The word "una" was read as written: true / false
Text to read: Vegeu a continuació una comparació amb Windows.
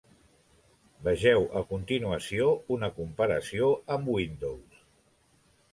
true